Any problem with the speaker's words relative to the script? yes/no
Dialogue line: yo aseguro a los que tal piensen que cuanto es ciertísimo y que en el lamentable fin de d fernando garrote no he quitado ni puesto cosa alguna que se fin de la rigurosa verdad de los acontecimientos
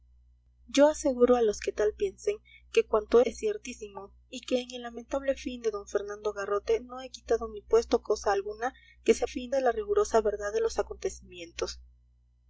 no